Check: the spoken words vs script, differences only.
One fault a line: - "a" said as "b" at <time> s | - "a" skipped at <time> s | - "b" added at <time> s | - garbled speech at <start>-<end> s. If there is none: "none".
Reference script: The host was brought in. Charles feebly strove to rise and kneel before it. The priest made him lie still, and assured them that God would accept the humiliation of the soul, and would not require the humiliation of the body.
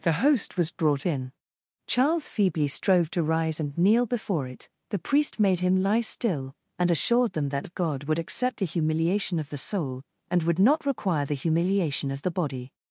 none